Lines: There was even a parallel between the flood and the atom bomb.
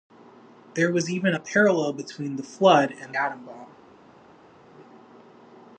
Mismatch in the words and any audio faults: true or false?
true